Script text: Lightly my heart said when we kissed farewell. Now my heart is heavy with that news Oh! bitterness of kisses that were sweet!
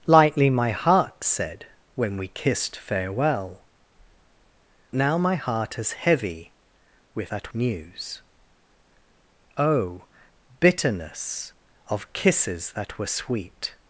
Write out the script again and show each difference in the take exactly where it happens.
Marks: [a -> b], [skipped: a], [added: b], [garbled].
Lightly my heart said when we kissed farewell. Now my heart is heavy with that news Oh! bitterness of kisses that were sweet!